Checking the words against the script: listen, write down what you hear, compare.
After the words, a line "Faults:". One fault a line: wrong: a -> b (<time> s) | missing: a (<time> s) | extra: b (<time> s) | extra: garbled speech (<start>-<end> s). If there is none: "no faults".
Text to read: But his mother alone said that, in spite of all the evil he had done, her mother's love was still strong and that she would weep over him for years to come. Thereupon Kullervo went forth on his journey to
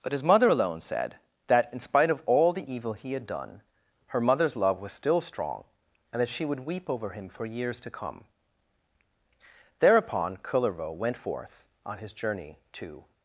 But his mother alone said that, in spite of all the evil he had done, her mother's love was still strong and that she would weep over him for years to come. Thereupon Kullervo went forth on his journey to
Faults:
no faults